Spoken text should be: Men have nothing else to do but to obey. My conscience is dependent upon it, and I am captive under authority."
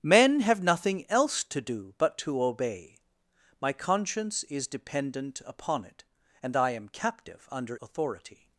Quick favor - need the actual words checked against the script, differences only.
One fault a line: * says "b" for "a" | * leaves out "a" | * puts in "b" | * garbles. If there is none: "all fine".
all fine